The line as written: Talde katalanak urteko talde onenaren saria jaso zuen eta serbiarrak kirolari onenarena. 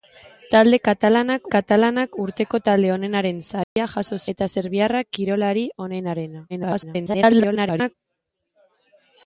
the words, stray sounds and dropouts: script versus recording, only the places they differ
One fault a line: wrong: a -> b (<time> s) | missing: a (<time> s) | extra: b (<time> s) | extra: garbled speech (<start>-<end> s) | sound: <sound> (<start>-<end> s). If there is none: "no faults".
extra: katalanak (1.5 s)
sound: dropout (3.6-3.8 s)
missing: zuen (4.2 s)
extra: garbled speech (6.5-7.9 s)